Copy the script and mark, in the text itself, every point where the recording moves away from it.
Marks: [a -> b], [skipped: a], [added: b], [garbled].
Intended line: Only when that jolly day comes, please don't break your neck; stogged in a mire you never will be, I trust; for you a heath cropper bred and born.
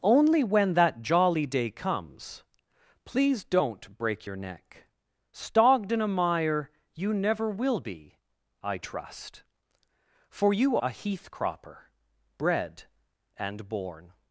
Only when that jolly day comes, please don't break your neck; stogged in a mire you never will be, I trust; for you a heath cropper bred and born.